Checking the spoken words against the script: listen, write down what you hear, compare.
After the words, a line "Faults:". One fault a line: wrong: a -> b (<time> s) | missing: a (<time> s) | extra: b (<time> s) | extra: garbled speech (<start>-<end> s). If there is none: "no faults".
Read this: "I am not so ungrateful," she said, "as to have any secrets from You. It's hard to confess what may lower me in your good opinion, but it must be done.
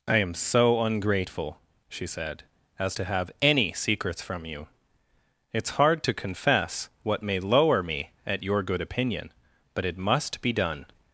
"I am so ungrateful," she said, "as to have any secrets from You. It's hard to confess what may lower me at your good opinion, but it must be done.
Faults:
missing: not (0.3 s)
wrong: in -> at (8.3 s)